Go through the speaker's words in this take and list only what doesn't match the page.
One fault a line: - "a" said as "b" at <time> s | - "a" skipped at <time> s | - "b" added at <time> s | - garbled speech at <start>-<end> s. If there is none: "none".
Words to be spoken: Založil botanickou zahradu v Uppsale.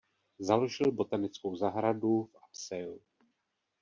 none